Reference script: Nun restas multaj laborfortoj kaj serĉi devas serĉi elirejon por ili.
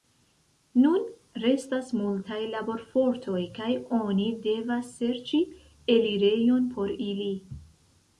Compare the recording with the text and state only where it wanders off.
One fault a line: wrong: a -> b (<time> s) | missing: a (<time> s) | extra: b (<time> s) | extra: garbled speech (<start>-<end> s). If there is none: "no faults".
wrong: serĉi -> oni (4.0 s)